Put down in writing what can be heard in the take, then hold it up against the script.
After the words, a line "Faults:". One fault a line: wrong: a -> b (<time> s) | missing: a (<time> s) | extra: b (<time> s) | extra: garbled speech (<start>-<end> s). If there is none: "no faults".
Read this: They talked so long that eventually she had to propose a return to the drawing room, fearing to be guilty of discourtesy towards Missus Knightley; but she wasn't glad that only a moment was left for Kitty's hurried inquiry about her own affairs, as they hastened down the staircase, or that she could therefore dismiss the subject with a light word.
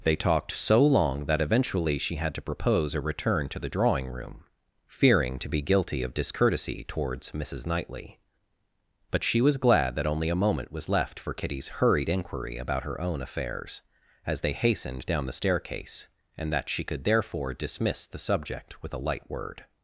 They talked so long that eventually she had to propose a return to the drawing room, fearing to be guilty of discourtesy towards Missus Knightley; but she was glad that only a moment was left for Kitty's hurried inquiry about her own affairs, as they hastened down the staircase, and that she could therefore dismiss the subject with a light word.
Faults:
wrong: wasn't -> was (9.4 s)
wrong: or -> and (16.4 s)